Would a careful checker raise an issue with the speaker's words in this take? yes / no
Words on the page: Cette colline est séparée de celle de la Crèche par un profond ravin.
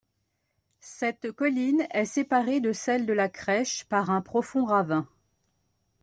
no